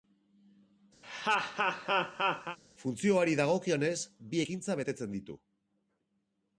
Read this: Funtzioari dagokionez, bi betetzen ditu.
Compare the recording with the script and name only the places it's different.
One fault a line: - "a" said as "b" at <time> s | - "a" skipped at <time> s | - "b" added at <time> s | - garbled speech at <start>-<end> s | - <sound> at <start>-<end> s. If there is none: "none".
- laugh at 1.0-2.6 s
- "ekintza" added at 4.4 s